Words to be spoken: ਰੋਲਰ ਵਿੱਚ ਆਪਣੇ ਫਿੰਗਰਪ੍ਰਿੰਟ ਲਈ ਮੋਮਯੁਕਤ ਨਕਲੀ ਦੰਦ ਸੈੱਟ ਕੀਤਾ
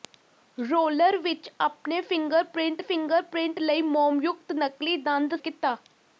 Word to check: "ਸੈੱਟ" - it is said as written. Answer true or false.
false